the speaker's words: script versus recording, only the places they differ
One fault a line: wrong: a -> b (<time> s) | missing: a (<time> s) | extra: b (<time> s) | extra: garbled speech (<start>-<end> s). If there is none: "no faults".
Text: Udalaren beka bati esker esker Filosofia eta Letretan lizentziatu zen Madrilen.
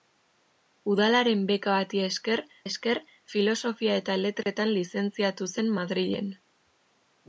no faults